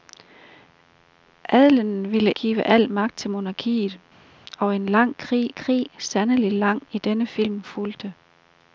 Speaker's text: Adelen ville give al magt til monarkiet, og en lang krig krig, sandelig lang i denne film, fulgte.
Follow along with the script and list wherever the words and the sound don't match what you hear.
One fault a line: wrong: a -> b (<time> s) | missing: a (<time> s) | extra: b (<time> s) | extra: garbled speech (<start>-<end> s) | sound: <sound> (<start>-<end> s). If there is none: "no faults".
no faults